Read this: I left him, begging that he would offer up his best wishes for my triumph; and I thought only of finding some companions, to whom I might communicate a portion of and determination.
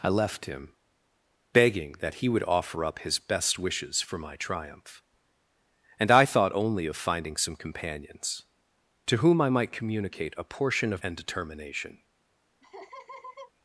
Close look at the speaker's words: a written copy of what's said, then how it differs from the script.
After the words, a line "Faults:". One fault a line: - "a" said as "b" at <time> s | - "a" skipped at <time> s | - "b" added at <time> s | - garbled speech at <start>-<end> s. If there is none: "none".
I left him, begging that he would offer up his best wishes for my triumph; and I thought only of finding some companions, to whom I might communicate a portion of and determination.
Faults:
none